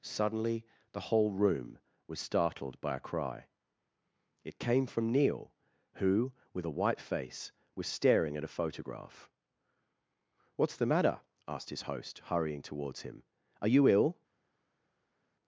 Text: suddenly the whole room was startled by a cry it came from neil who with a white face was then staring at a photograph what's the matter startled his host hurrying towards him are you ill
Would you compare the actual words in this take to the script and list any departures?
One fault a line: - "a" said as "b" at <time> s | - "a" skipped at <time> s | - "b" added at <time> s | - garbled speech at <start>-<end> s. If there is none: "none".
- "then" skipped at 7.9 s
- "startled" said as "asked" at 11.5 s